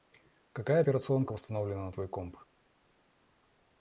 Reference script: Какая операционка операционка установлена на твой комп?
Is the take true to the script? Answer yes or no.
no